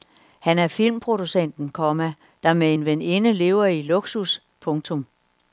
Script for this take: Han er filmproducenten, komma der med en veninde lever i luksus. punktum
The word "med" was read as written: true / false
true